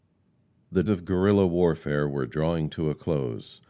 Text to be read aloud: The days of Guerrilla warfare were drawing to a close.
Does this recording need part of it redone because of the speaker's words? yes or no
yes